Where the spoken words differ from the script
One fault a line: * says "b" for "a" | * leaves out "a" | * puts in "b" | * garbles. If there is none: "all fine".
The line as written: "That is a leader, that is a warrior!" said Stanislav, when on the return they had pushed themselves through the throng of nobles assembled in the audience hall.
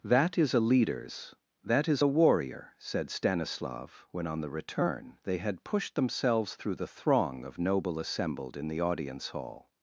* says "leaders" for "leader"
* says "noble" for "nobles"